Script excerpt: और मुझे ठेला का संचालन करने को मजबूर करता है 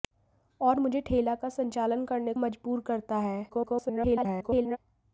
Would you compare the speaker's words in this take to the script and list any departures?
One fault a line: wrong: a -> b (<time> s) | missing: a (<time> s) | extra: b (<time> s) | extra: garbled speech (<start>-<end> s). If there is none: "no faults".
missing: को (2.3 s)
extra: garbled speech (3.5-4.8 s)